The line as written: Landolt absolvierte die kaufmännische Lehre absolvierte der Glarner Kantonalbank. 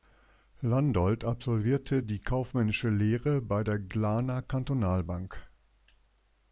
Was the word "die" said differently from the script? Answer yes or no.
no